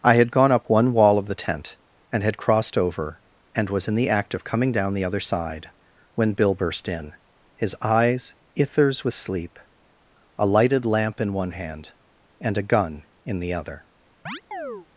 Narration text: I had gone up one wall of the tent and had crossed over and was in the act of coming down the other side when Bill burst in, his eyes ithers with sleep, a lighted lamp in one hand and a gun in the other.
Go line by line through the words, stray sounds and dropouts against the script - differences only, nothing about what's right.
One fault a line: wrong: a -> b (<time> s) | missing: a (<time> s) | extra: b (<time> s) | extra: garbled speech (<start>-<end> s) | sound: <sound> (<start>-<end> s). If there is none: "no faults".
sound: chirp (14.3-14.9 s)